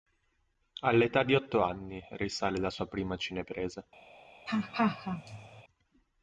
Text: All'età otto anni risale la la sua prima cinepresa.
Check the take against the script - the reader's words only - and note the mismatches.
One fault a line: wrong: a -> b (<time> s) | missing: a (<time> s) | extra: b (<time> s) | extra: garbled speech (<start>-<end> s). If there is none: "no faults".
extra: di (1.2 s)
missing: la (2.7 s)